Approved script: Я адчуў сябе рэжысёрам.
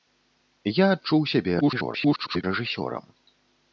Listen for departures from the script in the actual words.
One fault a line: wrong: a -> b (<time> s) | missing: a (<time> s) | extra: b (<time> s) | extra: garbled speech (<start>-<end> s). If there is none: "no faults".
extra: garbled speech (1.6-2.4 s)